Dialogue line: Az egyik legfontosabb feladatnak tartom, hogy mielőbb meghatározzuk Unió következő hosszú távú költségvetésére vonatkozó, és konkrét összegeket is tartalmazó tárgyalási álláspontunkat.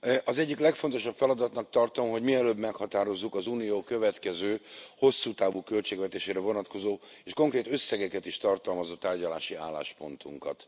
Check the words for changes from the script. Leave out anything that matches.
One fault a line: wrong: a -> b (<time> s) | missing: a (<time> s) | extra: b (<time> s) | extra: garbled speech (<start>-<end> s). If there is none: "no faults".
extra: az (3.4 s)